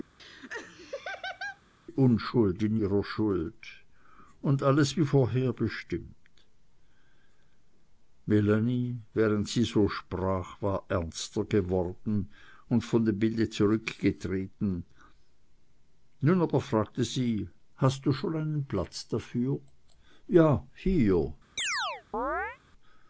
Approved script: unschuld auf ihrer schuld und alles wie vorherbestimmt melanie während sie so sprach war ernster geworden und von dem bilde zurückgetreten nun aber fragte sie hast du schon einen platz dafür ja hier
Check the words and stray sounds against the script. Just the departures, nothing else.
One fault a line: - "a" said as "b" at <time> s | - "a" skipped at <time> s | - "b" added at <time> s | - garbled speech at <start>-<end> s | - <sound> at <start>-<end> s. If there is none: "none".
- laugh at 0.2-1.6 s
- "auf" said as "in" at 2.6 s
- chirp at 21.6-22.6 s